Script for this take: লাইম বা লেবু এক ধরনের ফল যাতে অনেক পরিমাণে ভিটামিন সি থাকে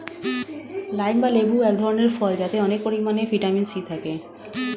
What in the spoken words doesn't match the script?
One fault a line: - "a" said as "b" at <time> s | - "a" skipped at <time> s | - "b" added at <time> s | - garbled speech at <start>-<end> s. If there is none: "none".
none